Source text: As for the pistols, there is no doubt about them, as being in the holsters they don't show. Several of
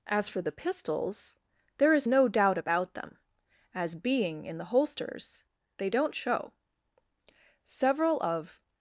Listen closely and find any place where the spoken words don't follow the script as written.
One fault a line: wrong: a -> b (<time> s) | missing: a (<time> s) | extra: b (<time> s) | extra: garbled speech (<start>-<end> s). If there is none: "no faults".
no faults